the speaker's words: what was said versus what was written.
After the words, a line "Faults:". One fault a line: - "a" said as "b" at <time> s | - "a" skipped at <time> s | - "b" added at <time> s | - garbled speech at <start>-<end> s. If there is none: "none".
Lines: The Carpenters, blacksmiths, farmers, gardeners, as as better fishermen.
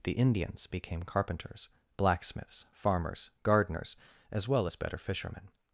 The Indians became carpenters, blacksmiths, farmers, gardeners, as well as better fishermen.
Faults:
- "Indians became" added at 0.1 s
- "well" added at 4.5 s